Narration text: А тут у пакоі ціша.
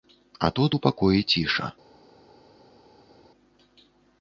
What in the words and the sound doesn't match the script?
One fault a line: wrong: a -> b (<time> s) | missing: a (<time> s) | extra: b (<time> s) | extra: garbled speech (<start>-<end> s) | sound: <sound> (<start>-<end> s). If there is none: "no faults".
no faults